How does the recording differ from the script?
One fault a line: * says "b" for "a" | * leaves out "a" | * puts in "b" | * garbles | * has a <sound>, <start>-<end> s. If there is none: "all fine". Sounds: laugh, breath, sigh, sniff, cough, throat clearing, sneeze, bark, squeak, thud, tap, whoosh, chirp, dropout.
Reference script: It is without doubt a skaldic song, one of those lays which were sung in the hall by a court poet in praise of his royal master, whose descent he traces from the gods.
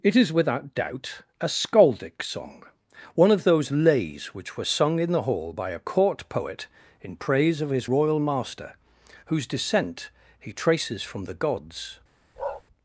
* has a bark, 12.4-12.6 s